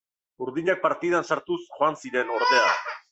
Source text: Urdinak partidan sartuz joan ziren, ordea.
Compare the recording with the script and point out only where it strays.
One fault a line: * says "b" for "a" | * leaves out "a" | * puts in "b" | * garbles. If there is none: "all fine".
all fine